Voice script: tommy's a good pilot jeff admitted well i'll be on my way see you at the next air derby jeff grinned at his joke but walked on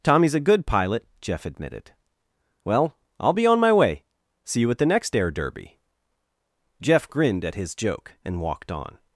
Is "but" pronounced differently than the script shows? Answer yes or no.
yes